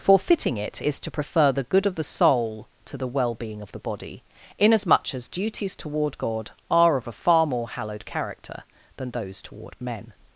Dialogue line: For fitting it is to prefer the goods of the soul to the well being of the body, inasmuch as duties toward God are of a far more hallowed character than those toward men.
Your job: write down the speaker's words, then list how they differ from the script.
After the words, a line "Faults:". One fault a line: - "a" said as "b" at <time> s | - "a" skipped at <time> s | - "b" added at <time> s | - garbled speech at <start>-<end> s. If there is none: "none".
For fitting it is to prefer the good of the soul to the well being of the body, inasmuch as duties toward God are of a far more hallowed character than those toward men.
Faults:
- "goods" said as "good" at 1.6 s